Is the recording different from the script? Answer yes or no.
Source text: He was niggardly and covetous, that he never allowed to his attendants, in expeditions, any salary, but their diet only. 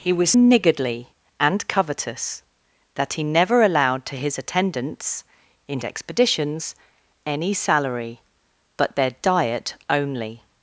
no